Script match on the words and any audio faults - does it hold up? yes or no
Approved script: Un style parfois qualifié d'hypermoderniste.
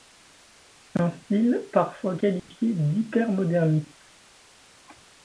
no